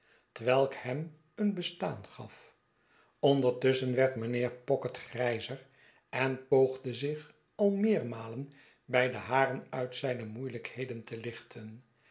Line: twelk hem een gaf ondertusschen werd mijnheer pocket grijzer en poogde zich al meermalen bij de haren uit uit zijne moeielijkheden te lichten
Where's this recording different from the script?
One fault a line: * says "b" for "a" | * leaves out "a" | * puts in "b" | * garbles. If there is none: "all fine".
* puts in "bestaan"
* leaves out "uit"